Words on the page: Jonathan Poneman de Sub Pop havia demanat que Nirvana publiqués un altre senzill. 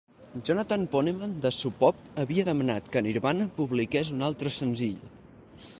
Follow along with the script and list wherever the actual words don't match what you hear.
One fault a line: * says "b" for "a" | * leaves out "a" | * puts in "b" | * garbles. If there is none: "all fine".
all fine